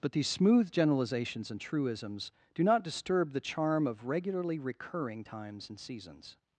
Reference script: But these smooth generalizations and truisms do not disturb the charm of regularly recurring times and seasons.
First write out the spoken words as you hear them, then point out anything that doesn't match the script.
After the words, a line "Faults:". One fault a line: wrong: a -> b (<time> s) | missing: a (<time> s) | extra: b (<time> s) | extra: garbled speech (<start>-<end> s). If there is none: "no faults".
But these smooth generalizations and truisms do not disturb the charm of regularly recurring times and seasons.
Faults:
no faults